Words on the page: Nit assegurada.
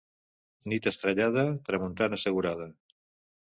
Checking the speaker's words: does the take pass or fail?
fail